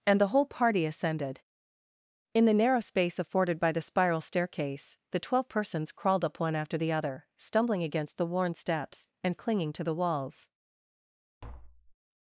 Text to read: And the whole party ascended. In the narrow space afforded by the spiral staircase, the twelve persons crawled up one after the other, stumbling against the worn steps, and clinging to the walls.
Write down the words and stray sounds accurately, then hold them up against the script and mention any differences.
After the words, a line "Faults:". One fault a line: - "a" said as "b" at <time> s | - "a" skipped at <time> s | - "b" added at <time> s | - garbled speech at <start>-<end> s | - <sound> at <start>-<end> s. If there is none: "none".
And the whole party ascended. In the narrow space afforded by the spiral staircase, the twelve persons crawled up one after the other, stumbling against the worn steps, and clinging to the walls.
Faults:
- tap at 11.4-12.0 s